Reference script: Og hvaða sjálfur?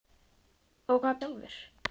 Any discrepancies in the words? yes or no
no